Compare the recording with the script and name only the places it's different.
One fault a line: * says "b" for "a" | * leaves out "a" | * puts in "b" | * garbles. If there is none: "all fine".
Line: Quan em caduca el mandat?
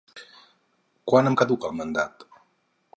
all fine